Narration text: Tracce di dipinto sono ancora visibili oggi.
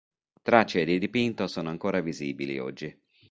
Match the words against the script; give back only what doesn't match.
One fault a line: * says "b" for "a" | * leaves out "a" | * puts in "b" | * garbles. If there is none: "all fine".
all fine